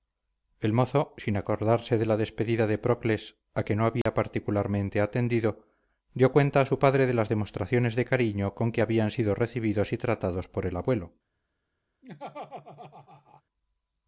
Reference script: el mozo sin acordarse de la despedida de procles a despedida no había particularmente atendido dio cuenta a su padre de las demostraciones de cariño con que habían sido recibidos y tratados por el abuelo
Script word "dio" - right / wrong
right